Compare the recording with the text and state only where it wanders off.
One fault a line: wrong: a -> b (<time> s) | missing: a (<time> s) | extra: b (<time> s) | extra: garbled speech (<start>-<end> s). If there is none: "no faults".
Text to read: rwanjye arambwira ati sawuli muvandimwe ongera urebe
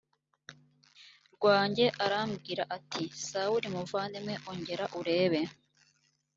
no faults